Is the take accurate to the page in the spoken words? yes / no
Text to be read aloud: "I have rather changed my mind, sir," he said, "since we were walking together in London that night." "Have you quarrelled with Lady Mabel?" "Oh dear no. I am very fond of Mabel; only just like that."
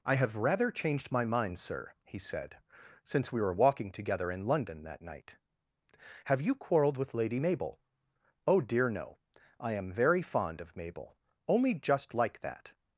yes